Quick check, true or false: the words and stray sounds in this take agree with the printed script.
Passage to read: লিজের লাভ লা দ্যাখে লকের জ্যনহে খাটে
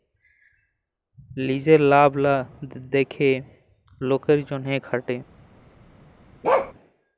false